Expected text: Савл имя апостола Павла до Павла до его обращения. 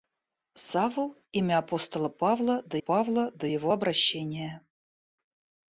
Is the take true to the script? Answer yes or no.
yes